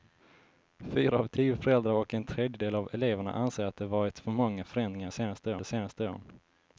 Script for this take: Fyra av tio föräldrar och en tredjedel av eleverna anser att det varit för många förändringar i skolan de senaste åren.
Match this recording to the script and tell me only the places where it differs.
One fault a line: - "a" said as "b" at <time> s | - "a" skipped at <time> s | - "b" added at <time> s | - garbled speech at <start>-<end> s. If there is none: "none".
- "skolan" said as "senaste" at 5.1 s